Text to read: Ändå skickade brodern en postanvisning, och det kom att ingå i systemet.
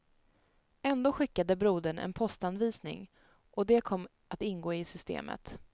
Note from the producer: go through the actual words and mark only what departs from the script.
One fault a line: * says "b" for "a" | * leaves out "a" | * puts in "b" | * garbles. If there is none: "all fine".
all fine